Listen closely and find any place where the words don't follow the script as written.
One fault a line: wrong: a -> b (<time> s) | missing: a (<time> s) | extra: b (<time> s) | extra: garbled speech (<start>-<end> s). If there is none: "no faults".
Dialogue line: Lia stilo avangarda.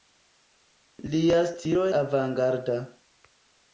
no faults